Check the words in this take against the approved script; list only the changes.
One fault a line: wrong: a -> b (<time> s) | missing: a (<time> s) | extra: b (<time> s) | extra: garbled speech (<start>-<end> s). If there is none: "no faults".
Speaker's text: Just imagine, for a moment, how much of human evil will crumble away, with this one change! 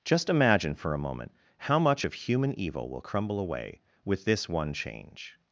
no faults